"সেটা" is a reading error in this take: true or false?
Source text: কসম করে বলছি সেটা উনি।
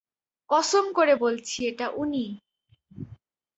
true